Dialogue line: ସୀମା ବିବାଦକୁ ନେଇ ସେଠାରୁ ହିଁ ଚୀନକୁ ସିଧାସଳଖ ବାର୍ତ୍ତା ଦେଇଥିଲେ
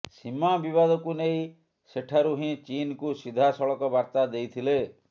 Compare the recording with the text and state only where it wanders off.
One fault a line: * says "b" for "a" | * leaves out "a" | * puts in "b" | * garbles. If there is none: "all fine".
all fine